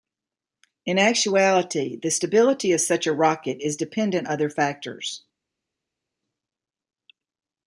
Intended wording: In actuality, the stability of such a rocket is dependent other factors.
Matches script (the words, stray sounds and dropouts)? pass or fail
pass